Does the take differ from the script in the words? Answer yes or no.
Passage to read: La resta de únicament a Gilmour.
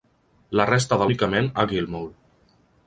no